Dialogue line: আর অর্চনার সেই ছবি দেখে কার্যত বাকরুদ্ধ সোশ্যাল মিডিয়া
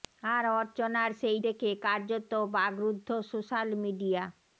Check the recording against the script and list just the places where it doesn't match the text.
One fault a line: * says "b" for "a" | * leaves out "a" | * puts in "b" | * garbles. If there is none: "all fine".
* leaves out "ছবি"